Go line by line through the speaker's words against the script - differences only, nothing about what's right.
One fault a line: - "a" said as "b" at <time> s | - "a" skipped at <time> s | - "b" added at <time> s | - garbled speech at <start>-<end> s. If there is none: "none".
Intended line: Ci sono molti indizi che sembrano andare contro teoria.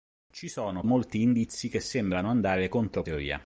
none